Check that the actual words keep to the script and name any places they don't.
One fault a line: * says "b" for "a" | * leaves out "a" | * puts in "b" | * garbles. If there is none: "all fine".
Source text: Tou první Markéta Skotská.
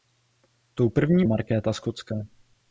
all fine